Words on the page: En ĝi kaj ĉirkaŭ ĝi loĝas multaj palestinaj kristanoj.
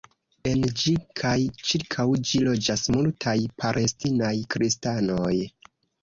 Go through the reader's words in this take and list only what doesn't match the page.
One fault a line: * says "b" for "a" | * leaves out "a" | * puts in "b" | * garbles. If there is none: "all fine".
all fine